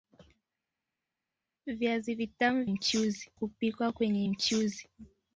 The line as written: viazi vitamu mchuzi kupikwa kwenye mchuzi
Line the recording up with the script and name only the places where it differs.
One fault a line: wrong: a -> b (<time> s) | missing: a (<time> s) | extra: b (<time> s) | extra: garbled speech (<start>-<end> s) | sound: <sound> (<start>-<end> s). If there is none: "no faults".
no faults